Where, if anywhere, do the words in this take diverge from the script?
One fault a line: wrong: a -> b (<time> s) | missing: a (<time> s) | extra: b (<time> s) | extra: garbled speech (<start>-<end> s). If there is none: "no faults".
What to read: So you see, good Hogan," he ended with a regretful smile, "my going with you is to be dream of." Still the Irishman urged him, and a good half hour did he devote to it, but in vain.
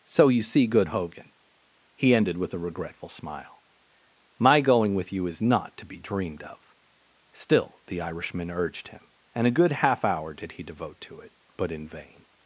extra: not (5.4 s)
wrong: dream -> dreamed (6.0 s)